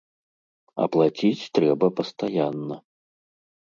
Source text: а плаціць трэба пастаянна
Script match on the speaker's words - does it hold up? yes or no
yes